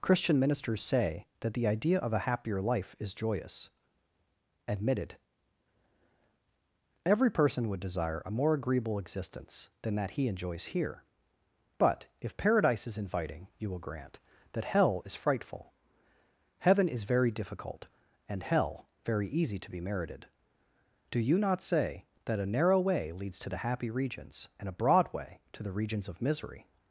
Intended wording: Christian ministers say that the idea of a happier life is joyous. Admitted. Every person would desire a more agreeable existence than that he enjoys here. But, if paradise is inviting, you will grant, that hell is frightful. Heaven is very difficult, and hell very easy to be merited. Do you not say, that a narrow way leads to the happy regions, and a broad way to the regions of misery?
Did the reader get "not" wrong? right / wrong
right